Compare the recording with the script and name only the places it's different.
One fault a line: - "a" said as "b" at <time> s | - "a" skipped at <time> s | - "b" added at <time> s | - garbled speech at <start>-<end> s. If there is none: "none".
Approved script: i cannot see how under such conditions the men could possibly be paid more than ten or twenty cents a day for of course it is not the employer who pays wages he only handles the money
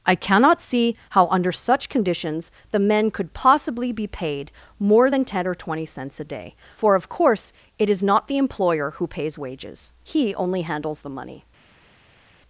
none